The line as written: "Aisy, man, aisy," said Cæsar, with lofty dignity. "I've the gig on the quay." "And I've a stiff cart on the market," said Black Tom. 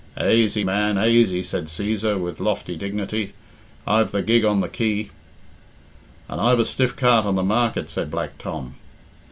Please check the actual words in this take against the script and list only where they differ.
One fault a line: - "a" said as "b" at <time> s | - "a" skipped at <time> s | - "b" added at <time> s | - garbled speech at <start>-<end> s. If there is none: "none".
none